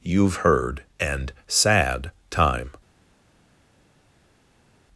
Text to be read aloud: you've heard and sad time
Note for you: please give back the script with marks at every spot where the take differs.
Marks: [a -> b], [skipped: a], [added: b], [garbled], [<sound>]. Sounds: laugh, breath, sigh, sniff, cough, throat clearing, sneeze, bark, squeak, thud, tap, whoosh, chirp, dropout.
you've heard and sad time